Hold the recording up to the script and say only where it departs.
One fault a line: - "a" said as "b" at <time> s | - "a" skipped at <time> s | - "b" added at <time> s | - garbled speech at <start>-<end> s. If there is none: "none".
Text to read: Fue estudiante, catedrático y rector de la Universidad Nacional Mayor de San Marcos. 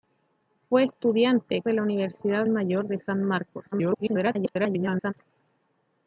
- "catedrático y rector" skipped at 1.6 s
- "Nacional" skipped at 2.5 s
- garbled speech at 3.7-5.1 s